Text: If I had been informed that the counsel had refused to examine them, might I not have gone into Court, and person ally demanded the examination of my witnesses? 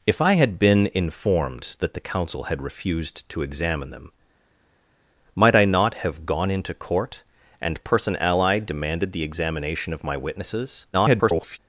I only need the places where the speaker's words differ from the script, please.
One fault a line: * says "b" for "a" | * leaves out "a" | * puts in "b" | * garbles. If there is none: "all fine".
* garbles